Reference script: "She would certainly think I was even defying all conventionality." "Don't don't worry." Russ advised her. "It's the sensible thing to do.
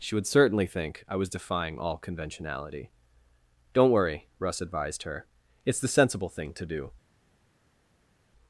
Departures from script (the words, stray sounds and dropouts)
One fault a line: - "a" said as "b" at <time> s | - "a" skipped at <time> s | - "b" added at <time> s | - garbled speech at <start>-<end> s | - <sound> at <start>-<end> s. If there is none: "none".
- "even" skipped at 1.3 s
- "don't" skipped at 3.9 s